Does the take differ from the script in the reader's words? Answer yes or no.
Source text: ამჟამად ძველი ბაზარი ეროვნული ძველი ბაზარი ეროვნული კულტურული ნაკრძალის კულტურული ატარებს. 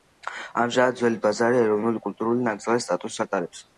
yes